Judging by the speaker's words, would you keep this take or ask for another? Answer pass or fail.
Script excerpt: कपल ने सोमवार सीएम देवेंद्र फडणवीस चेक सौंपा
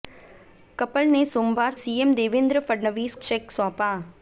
pass